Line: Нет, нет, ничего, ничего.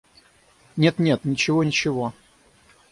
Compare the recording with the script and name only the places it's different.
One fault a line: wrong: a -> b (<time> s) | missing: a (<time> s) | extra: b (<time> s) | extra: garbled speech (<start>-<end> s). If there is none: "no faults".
no faults